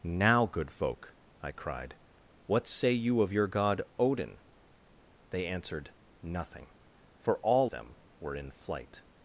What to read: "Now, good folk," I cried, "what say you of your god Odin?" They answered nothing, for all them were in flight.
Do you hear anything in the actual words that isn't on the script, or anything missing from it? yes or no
no